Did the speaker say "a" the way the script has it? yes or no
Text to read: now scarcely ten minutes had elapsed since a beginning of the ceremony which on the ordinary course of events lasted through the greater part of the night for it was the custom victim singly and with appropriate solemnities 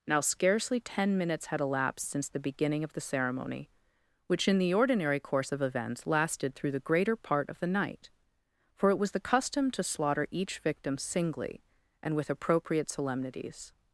no